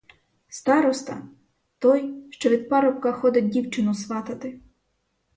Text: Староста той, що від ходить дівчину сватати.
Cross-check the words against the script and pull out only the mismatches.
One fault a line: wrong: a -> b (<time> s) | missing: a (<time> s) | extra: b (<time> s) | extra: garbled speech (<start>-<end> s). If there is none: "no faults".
extra: парубка (2.7 s)